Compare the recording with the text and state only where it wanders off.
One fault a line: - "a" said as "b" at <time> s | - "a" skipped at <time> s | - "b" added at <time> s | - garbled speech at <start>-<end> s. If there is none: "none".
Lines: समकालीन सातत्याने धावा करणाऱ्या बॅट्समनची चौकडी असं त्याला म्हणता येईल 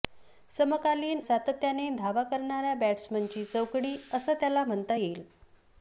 none